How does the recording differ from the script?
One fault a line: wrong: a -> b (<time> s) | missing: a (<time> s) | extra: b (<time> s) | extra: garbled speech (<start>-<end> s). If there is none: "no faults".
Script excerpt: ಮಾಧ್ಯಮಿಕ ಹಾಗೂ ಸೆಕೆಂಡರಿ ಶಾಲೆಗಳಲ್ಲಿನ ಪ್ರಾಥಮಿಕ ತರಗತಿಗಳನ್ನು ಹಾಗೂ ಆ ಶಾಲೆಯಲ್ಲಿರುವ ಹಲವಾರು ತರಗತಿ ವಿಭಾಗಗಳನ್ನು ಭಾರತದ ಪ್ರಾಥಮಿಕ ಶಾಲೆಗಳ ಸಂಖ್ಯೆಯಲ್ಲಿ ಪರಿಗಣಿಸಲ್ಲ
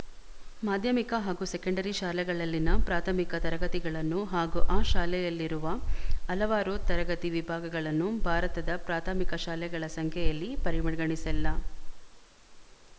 no faults